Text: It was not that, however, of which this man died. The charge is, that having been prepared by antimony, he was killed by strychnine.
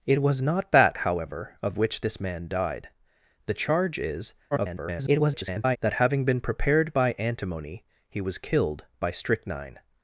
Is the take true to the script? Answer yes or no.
no